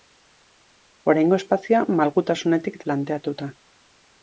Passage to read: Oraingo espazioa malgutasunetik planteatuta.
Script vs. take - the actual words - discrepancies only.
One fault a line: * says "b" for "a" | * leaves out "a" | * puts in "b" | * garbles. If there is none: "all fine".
all fine